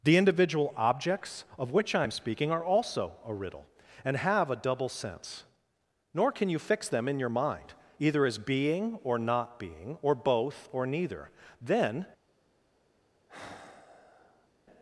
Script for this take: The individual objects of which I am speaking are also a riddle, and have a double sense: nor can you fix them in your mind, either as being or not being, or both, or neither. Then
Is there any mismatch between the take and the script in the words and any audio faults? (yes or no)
yes